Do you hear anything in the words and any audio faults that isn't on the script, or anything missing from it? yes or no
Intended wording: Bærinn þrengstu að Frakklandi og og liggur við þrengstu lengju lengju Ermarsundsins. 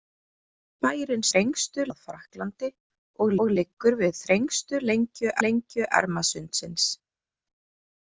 no